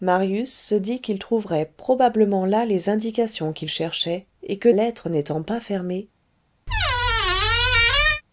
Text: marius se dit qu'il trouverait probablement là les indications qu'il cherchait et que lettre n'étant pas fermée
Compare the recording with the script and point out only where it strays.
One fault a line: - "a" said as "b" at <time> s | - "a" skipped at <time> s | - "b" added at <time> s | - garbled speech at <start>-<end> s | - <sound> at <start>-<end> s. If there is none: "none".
- squeak at 6.7-8.2 s